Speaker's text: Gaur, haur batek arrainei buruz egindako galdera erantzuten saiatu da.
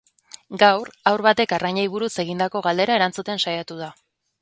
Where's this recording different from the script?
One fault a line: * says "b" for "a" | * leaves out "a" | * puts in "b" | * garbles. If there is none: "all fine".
all fine